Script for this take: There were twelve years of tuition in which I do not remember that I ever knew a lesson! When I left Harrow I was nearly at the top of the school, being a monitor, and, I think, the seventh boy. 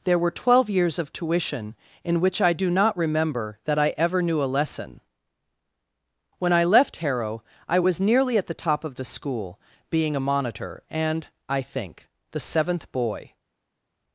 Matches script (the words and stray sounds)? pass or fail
pass